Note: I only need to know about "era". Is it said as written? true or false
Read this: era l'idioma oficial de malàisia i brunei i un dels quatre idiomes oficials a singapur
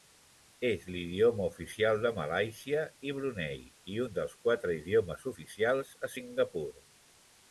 false